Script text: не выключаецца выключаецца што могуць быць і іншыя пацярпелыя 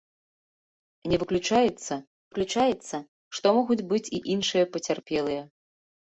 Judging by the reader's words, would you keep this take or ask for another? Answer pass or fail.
pass